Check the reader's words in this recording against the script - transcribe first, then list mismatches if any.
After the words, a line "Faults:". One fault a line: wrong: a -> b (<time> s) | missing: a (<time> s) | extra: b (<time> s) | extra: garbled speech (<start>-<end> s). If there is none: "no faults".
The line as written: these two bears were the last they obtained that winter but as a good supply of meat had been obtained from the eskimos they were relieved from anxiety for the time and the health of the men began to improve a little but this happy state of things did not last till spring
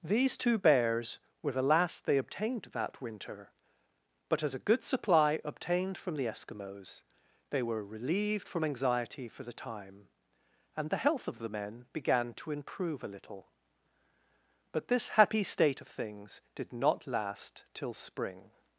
these two bears were the last they obtained that winter but as a good supply obtained from the eskimos they were relieved from anxiety for the time and the health of the men began to improve a little but this happy state of things did not last till spring
Faults:
missing: of meat had been (5.4 s)